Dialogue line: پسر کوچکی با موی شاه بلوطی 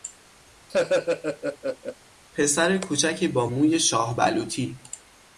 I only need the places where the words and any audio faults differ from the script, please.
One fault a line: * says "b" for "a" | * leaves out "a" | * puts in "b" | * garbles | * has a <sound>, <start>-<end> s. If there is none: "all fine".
* has a laugh, 0.7-2.0 s